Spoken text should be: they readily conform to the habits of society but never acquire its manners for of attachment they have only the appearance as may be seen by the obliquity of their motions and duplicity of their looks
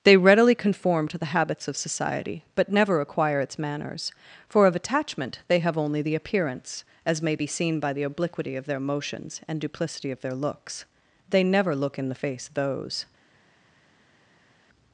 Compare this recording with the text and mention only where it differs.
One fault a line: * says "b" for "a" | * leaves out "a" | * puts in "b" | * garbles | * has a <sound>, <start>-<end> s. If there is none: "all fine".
* puts in "they never look in the face those"